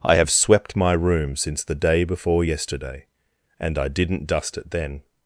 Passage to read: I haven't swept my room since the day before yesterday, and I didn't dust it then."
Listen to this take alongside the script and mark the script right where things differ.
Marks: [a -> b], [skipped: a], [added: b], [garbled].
I [haven't -> have] swept my room since the day before yesterday, and I didn't dust it then."